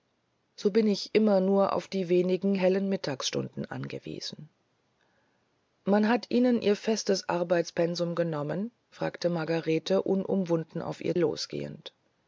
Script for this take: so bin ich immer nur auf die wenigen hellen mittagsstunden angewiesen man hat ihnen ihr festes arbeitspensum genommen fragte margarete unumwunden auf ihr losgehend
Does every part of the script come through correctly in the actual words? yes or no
yes